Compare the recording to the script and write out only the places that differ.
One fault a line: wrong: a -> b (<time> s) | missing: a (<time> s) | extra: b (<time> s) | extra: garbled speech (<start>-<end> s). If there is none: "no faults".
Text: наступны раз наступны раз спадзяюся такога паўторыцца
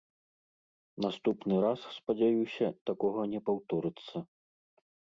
missing: наступны раз (1.8 s)
extra: не (3.3 s)